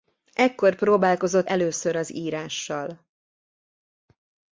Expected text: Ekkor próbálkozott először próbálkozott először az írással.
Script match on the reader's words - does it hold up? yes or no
no